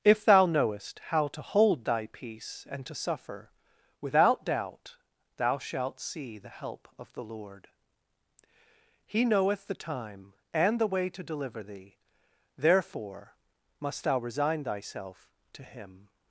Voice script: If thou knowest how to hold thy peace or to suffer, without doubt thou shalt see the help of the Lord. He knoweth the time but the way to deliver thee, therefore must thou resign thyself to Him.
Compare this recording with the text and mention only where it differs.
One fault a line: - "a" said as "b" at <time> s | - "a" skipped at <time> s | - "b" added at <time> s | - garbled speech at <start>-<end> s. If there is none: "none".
- "or" said as "and" at 2.7 s
- "but" said as "and" at 10.5 s